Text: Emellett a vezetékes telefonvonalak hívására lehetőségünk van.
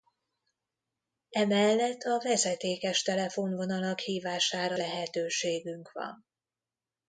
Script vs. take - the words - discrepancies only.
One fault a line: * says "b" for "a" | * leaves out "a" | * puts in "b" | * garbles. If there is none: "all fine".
all fine